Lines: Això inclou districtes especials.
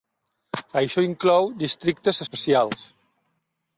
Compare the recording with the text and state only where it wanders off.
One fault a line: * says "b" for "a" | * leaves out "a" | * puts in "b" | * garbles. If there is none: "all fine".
all fine